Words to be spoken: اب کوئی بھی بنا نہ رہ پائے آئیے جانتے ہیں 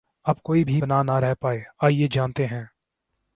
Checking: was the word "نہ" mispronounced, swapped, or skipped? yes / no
no